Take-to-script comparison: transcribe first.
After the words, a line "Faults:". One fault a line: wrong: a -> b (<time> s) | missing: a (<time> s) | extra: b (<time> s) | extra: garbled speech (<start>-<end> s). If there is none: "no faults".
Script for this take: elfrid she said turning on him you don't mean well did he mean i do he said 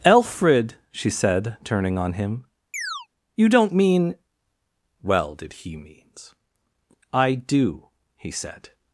elfrid she said turning on him you don't mean well did he means i do he said
Faults:
wrong: mean -> means (5.8 s)